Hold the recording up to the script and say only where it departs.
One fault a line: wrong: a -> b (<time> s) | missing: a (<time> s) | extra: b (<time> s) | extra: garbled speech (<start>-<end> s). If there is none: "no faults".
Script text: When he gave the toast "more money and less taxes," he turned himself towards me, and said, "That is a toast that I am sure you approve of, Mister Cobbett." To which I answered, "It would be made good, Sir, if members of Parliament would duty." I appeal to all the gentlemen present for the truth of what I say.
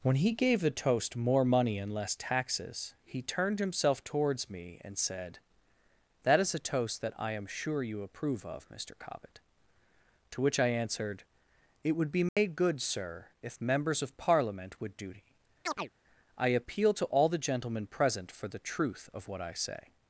no faults